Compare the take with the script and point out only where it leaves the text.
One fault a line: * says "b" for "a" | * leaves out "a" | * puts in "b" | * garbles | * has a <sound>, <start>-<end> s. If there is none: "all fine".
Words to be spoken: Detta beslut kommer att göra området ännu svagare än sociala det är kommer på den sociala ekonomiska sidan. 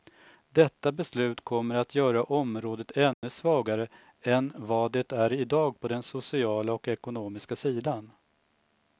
* has a dropout, 3.1-3.2 s
* says "vad" for "sociala"
* says "idag" for "kommer"
* puts in "och"